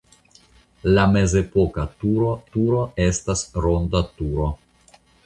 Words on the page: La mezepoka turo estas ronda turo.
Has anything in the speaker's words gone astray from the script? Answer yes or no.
yes